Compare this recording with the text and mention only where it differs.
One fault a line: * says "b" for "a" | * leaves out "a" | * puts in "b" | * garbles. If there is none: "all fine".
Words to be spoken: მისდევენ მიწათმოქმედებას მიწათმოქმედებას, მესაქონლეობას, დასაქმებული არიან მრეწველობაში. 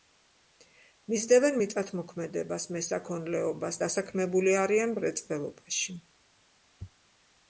* leaves out "მიწათმოქმედებას"